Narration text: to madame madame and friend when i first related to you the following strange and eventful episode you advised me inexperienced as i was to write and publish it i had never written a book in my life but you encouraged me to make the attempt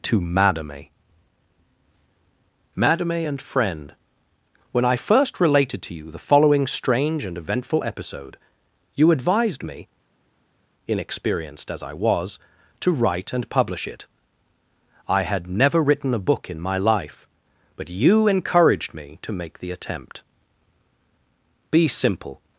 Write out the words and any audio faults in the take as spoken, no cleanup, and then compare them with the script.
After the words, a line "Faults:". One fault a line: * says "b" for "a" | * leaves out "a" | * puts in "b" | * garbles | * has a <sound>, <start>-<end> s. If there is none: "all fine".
to madame madame and friend when i first related to you the following strange and eventful episode you advised me inexperienced as i was to write and publish it i had never written a book in my life but you encouraged me to make the attempt be simple
Faults:
* puts in "be simple"